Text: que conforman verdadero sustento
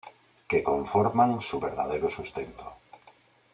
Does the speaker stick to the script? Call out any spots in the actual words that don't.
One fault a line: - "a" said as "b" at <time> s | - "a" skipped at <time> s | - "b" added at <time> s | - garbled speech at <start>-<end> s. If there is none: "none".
- "su" added at 1.4 s